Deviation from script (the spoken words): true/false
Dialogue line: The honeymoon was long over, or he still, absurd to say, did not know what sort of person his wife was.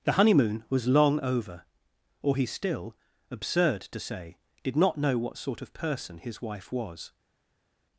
false